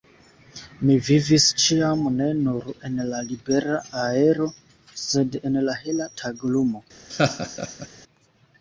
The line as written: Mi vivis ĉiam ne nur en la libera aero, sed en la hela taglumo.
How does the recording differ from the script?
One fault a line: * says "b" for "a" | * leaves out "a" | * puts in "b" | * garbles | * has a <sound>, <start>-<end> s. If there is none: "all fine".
* has a laugh, 7.1-7.9 s